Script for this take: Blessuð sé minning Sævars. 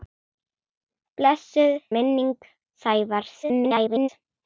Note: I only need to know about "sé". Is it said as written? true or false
false